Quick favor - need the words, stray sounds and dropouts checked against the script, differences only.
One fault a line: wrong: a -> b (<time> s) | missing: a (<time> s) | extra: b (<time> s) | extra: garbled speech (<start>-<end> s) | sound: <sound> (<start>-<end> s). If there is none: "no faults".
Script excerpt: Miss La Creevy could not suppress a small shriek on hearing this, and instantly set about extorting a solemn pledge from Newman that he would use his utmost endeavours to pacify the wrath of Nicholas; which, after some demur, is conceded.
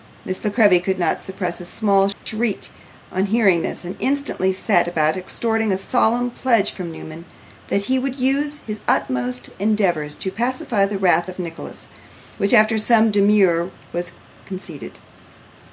sound: dropout (2.1-2.3 s)
wrong: is -> was (13.9 s)